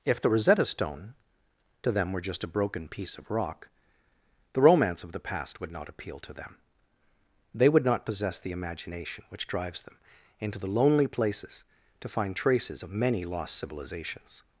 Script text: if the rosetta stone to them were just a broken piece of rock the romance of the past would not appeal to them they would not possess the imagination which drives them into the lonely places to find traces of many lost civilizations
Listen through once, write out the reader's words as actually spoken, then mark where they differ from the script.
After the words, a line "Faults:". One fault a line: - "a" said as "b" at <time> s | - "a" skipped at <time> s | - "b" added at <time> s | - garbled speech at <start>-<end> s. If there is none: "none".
if the rosetta stone to them were just a broken piece of rock the romance of the past would not appeal to them they would not possess the imagination which drives them into the lonely places to find traces of many lost civilizations
Faults:
none